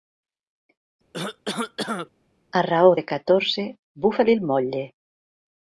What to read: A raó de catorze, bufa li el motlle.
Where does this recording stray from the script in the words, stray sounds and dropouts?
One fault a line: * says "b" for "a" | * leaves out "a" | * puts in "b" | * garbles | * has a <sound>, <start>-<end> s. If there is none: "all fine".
* has a cough, 1.1-2.1 s